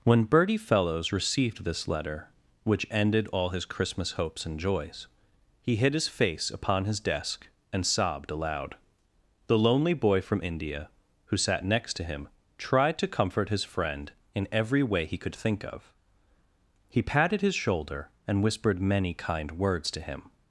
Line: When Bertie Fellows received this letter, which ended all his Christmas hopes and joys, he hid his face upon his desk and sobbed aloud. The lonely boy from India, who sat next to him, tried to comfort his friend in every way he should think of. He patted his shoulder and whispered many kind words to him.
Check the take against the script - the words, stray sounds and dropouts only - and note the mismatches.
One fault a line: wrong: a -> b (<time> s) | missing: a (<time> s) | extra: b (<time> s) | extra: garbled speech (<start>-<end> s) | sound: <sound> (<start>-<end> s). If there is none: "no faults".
wrong: should -> could (15.2 s)